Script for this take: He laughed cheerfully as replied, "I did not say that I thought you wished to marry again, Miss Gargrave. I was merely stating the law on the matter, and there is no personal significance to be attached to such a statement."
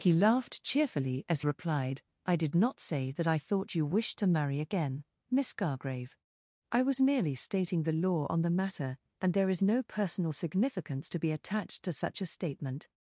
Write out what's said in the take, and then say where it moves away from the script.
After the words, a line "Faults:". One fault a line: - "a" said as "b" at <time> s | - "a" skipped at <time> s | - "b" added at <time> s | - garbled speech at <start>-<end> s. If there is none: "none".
He laughed cheerfully as replied, "I did not say that I thought you wished to marry again, Miss Gargrave. I was merely stating the law on the matter, and there is no personal significance to be attached to such a statement."
Faults:
none